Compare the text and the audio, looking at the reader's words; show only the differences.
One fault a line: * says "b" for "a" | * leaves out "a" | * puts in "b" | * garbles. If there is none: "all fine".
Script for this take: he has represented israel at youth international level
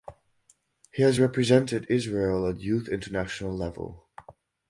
all fine